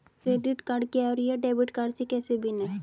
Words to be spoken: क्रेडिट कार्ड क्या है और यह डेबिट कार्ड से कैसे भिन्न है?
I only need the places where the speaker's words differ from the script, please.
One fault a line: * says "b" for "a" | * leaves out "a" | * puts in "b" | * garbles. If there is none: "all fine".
all fine